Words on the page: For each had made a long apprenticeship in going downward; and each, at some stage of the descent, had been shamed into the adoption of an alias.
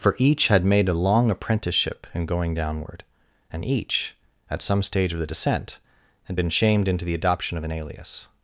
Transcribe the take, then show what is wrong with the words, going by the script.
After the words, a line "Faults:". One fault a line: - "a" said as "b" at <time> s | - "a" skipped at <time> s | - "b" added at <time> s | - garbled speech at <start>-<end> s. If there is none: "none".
For each had made a long apprenticeship in going downward; and each, at some stage of the descent, had been shamed into the adoption of an alias.
Faults:
none